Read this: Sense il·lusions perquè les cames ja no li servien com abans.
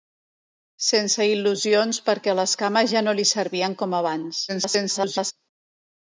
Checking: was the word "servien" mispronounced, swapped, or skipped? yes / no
no